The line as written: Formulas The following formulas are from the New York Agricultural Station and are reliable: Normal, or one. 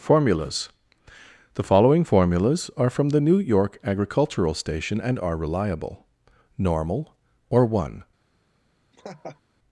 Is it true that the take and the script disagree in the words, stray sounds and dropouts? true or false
true